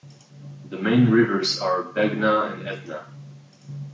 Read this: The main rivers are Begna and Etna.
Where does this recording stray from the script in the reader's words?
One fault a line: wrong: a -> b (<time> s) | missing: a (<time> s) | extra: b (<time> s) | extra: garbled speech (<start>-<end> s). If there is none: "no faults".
no faults